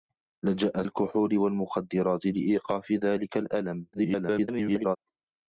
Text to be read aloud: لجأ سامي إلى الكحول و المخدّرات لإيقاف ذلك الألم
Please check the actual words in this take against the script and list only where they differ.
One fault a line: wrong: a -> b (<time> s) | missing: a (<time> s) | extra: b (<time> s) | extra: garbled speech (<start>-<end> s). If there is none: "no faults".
missing: سامي إلى (0.8 s)
extra: garbled speech (3.9-5.0 s)